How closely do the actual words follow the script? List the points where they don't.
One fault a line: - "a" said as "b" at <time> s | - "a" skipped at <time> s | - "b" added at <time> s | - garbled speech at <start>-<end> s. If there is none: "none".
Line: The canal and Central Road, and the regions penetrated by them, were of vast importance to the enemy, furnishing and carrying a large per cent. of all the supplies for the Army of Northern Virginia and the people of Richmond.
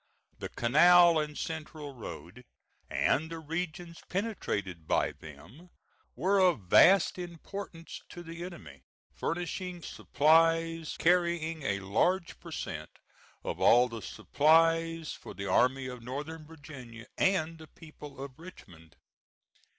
- "and" said as "supplies" at 9.8 s